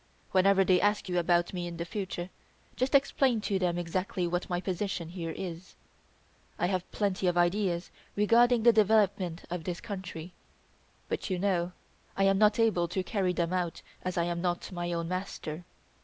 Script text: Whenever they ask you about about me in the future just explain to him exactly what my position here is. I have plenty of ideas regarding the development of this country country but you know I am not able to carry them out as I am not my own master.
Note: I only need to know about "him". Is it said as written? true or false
false